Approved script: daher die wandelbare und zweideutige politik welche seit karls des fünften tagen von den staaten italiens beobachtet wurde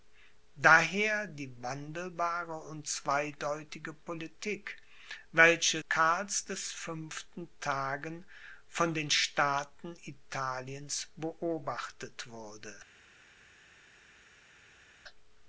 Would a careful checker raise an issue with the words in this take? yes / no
yes